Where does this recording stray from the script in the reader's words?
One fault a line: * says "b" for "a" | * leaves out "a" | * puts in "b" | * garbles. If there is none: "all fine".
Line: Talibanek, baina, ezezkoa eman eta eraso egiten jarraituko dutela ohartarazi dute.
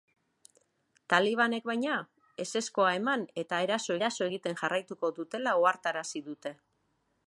* puts in "eraso"